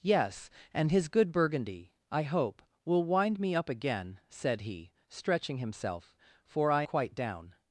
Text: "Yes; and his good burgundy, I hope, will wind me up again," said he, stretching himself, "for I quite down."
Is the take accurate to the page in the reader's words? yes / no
yes